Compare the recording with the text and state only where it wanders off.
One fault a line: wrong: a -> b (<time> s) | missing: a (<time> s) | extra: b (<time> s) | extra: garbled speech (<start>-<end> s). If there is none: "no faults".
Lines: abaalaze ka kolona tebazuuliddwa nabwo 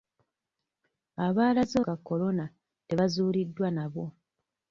no faults